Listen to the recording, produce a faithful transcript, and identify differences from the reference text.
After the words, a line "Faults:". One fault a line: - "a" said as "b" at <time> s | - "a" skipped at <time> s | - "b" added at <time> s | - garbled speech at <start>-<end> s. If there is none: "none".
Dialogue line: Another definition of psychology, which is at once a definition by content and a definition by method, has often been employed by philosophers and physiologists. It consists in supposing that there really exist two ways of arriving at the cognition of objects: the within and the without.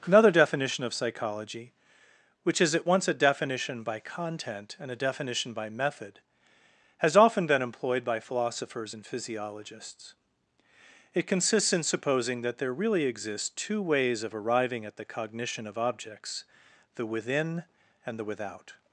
Another definition of psychology, which is at once a definition by content and a definition by method, has often been employed by philosophers and physiologists. It consists in supposing that there really exist two ways of arriving at the cognition of objects: the within and the without.
Faults:
none